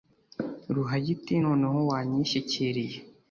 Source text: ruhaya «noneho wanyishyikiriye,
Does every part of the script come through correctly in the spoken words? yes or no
no